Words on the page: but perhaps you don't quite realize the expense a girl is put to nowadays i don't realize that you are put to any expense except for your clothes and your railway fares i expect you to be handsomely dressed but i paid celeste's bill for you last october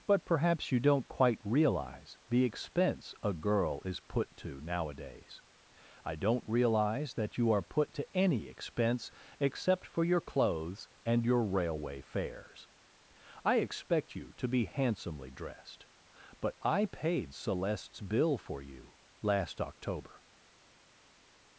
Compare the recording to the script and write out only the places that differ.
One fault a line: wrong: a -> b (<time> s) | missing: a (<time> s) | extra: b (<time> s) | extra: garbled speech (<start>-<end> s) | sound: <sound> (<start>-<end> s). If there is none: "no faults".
no faults